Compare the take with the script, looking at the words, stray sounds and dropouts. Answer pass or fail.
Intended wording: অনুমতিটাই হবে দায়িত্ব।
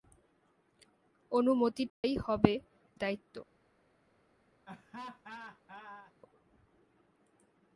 fail